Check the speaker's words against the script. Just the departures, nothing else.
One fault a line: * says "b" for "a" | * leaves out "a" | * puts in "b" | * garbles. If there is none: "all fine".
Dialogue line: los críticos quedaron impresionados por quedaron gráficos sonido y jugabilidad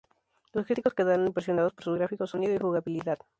* says "sus" for "quedaron"